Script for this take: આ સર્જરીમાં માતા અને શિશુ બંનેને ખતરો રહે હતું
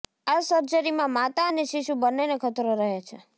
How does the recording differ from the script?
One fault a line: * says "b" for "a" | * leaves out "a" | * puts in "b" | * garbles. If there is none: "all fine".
* says "છે" for "હતું"